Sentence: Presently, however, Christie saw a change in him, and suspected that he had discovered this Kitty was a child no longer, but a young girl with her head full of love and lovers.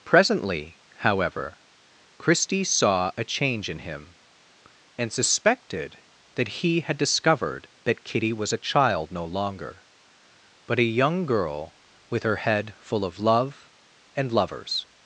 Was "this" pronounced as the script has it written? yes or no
no